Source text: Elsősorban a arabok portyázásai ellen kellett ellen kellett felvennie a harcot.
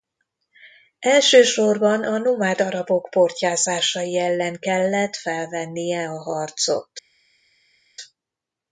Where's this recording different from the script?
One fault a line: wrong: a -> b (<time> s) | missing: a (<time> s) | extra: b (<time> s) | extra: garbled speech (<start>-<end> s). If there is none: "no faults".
extra: nomád (2.2 s)
missing: ellen kellett (5.2 s)